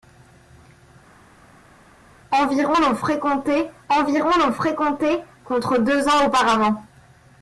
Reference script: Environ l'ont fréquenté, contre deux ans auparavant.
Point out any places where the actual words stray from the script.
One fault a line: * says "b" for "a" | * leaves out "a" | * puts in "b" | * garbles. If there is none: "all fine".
* puts in "environ l'ont fréquenté"